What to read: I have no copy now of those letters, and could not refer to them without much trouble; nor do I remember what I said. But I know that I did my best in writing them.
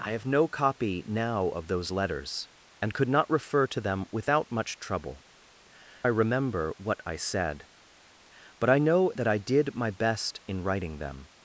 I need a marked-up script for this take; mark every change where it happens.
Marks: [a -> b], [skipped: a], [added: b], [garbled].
I have no copy now of those letters, and could not refer to them without much trouble; [skipped: nor do] I remember what I said. But I know that I did my best in writing them.